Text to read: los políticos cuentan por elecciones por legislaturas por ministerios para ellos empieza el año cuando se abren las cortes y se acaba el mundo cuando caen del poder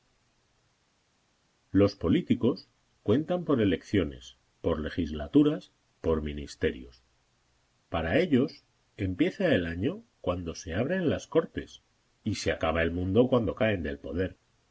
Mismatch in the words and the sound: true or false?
false